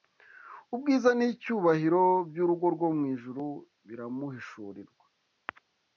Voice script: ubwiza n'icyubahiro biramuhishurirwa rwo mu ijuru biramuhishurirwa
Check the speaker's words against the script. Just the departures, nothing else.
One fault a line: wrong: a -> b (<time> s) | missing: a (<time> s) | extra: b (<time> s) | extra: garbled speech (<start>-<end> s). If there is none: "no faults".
wrong: biramuhishurirwa -> by'urugo (2.3 s)